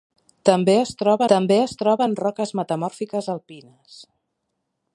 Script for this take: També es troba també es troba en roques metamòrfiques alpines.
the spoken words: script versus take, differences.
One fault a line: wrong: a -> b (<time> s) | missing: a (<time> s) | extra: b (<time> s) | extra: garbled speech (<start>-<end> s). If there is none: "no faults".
no faults